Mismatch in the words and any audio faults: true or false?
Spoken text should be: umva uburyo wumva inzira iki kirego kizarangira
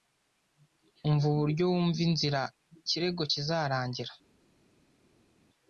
true